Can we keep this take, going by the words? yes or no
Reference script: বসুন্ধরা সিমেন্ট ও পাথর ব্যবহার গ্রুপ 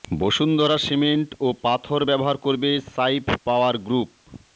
no